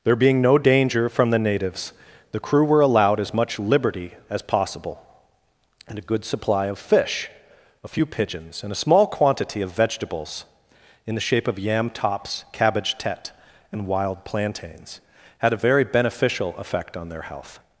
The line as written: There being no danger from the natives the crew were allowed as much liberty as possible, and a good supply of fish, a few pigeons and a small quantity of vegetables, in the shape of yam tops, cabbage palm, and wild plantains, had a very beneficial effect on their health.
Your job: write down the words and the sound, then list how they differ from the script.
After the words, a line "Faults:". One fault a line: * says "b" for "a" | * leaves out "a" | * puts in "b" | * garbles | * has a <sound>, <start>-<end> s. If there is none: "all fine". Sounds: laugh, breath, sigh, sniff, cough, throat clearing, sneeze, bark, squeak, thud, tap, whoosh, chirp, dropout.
There being no danger from the natives the crew were allowed as much liberty as possible, and a good supply of fish, a few pigeons and a small quantity of vegetables, in the shape of yam tops, cabbage tete, and wild plantains, had a very beneficial effect on their health.
Faults:
* says "tete" for "palm"